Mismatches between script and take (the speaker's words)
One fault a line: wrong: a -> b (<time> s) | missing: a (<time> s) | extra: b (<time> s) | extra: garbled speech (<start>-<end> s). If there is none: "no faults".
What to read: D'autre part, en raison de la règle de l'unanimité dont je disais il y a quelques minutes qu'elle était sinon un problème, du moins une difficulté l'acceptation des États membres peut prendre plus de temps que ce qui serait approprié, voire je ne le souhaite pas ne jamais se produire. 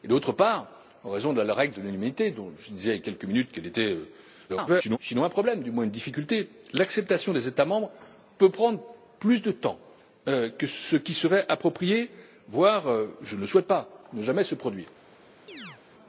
extra: garbled speech (4.5-5.0 s)